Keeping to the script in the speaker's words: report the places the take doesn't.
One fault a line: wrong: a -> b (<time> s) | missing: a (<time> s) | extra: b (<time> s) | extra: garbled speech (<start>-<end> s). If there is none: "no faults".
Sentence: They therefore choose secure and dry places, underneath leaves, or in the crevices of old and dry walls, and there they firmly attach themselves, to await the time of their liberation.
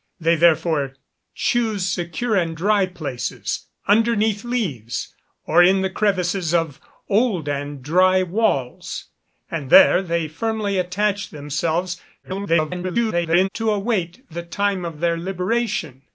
extra: garbled speech (12.2-13.5 s)